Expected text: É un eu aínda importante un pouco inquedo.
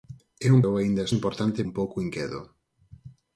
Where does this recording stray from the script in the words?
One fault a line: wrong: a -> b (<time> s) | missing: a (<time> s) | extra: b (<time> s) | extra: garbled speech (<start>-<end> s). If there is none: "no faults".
no faults